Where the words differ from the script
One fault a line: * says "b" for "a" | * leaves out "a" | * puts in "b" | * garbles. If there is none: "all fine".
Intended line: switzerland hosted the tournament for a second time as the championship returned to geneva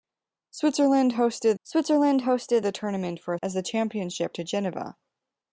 * puts in "switzerland hosted"
* leaves out "second time"
* leaves out "returned"